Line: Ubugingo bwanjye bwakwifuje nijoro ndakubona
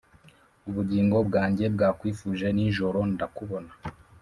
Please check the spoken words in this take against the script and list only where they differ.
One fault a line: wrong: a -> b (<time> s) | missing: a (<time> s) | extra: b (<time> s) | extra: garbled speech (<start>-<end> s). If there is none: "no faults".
no faults